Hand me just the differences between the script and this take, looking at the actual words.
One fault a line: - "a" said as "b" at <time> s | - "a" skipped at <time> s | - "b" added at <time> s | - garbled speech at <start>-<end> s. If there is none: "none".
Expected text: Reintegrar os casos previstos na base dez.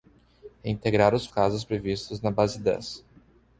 none